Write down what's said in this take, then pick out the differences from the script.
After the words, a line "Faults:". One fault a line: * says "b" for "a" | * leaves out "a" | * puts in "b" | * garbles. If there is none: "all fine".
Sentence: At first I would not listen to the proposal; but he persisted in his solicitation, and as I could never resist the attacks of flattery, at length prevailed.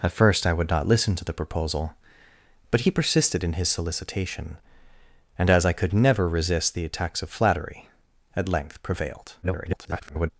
At first I would not listen to the proposal; but he persisted in his solicitation, and as I could never resist the attacks of flattery, at length prevailed. [garbled]
Faults:
* garbles